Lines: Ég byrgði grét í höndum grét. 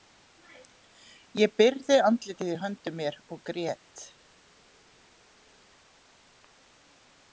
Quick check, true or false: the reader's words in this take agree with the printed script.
false